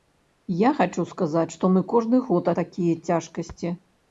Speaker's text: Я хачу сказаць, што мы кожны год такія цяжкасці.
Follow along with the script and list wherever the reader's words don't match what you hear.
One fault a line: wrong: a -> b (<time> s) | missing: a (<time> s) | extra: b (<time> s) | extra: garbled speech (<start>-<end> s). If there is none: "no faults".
no faults